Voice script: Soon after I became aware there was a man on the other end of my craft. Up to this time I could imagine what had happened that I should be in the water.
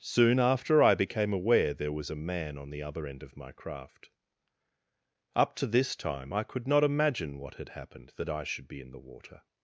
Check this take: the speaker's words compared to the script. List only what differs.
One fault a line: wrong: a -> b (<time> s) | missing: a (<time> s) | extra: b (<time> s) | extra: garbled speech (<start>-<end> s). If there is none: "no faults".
extra: not (6.7 s)